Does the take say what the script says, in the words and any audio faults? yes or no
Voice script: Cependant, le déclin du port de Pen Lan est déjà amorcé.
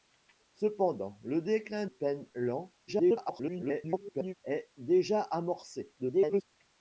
no